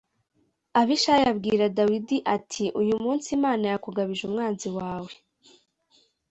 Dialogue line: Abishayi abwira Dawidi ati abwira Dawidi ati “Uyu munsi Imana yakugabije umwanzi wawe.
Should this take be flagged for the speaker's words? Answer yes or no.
yes